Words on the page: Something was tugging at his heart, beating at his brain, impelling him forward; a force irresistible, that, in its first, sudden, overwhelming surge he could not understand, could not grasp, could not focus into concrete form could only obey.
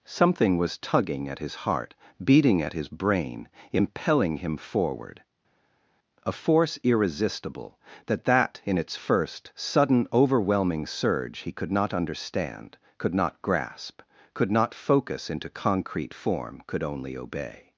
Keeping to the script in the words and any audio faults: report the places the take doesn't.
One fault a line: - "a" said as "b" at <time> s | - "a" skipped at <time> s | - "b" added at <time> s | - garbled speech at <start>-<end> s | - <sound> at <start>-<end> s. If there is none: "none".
- "that" added at 8.2 s